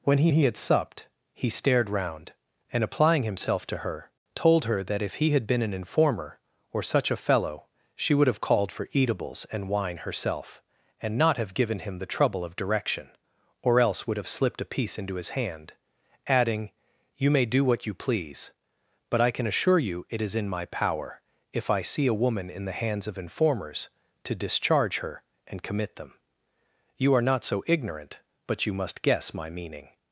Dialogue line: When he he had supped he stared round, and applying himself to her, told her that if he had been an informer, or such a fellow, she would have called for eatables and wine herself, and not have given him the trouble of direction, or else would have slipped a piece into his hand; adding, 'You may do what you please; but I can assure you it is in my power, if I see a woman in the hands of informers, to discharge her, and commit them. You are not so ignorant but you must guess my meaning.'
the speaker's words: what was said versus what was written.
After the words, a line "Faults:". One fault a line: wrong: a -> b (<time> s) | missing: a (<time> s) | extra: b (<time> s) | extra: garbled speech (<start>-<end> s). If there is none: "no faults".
When he he had supped he stared round, and applying himself to her, told her that if he had been an informer, or such a fellow, she would have called for eatables and wine herself, and not have given him the trouble of direction, or else would have slipped a piece into his hand; adding, 'You may do what you please; but I can assure you it is in my power, if I see a woman in the hands of informers, to discharge her, and commit them. You are not so ignorant but you must guess my meaning.'
Faults:
no faults